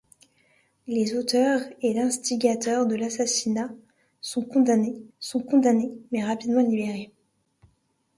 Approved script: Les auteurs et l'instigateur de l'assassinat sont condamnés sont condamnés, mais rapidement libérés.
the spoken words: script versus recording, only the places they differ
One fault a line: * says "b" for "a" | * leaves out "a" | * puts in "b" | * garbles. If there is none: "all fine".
all fine